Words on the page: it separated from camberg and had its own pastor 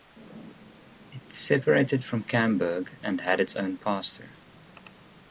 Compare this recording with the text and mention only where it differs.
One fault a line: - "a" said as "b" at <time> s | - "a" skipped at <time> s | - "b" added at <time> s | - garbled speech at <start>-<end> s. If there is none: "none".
none